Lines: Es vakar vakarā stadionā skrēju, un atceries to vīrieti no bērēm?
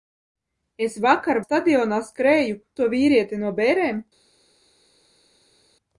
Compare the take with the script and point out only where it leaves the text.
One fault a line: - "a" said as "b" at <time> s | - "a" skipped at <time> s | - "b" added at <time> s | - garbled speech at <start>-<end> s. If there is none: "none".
- "vakarā" skipped at 1.4 s
- "un atceries" skipped at 2.6 s